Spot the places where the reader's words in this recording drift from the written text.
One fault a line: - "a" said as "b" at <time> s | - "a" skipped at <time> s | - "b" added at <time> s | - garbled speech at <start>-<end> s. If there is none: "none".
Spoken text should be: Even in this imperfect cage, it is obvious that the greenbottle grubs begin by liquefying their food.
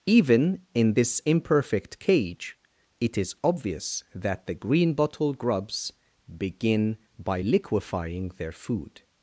none